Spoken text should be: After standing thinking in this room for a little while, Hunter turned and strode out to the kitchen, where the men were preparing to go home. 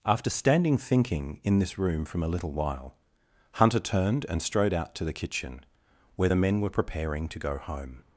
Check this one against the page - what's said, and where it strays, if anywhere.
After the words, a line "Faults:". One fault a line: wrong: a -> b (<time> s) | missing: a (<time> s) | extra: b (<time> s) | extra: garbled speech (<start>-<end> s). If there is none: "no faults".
After standing thinking in this room from a little while, Hunter turned and strode out to the kitchen, where the men were preparing to go home.
Faults:
wrong: for -> from (2.0 s)